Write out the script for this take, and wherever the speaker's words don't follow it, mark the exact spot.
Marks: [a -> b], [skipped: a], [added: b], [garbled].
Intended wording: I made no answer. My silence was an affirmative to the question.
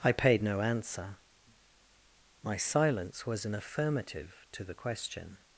I [made -> paid] no answer. My silence was an affirmative to the question.